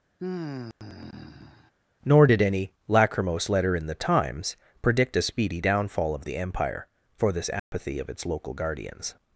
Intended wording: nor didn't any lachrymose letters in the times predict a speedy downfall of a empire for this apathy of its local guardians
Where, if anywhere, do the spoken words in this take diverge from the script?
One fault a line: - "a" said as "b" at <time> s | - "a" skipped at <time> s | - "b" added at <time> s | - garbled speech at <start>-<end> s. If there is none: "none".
- "didn't" said as "did" at 2.2 s
- "letters" said as "letter" at 3.5 s
- "a" said as "the" at 6.2 s